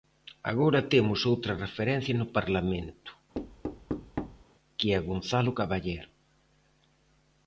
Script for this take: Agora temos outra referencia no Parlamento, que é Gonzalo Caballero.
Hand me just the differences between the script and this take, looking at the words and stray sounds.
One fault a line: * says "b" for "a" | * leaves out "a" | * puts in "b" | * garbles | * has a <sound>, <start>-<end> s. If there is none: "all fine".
* has a thud, 3.3-4.4 s